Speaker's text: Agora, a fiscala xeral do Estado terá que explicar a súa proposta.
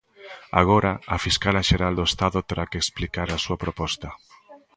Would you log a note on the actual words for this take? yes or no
no